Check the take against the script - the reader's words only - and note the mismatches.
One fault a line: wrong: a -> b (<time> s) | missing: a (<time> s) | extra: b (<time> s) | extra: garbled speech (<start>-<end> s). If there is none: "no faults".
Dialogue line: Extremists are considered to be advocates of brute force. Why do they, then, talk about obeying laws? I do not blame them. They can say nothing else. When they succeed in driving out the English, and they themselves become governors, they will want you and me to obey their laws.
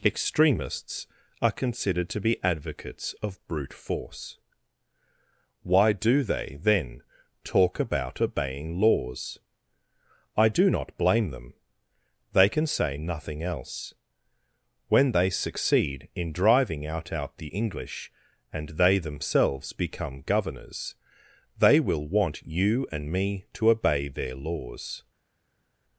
extra: out (17.1 s)